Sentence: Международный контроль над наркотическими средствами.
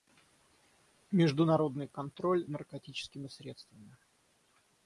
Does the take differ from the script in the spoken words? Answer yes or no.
yes